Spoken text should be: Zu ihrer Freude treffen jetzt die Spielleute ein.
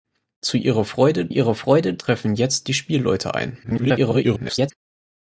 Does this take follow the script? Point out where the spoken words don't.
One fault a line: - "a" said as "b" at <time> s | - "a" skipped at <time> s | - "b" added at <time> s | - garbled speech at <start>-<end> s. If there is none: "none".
- "ihrer Freude" added at 1.3 s
- garbled speech at 3.6-4.7 s